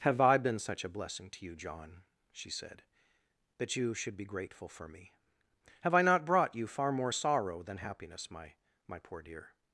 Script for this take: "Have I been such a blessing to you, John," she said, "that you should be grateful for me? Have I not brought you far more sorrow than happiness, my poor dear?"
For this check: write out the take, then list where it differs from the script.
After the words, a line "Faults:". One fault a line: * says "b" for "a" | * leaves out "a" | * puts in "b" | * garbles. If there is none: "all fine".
"Have I been such a blessing to you, John," she said, "that you should be grateful for me? Have I not brought you far more sorrow than happiness, my my poor dear?"
Faults:
* puts in "my"